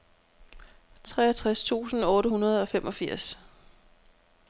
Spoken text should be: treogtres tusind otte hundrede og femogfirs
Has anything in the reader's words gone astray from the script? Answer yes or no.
no